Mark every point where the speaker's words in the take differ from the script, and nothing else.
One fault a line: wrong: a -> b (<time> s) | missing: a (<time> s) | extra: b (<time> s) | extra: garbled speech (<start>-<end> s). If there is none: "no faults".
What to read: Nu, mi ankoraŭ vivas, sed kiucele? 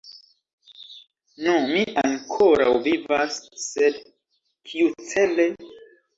no faults